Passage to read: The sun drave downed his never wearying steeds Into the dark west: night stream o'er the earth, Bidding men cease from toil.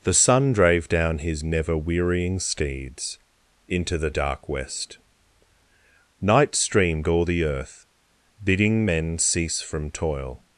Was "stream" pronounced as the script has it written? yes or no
no